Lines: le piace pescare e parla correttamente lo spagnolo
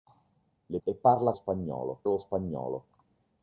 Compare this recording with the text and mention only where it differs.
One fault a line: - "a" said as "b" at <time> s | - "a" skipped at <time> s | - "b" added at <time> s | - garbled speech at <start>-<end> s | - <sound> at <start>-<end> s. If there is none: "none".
- "piace pescare" skipped at 0.8 s
- "correttamente" said as "spagnolo" at 1.3 s